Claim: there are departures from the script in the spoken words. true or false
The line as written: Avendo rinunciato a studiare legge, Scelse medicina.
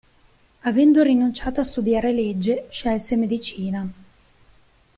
false